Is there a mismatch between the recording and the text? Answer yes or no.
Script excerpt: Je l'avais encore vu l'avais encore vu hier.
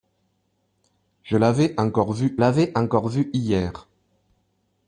no